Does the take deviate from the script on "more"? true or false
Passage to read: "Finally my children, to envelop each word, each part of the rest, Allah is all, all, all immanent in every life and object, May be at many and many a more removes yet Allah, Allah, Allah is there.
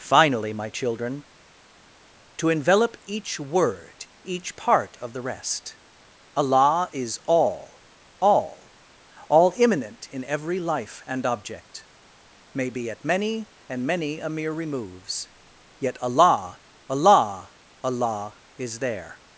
true